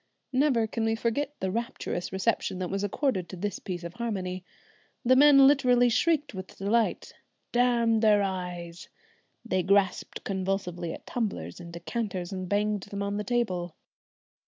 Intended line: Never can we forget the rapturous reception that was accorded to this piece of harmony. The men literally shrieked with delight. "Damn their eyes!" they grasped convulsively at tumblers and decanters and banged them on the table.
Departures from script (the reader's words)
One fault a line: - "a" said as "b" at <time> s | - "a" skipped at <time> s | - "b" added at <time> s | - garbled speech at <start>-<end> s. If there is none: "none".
none